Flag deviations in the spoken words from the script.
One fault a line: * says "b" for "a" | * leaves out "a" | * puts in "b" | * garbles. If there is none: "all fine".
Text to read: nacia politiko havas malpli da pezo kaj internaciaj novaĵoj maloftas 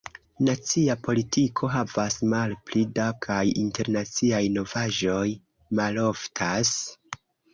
* leaves out "pezo"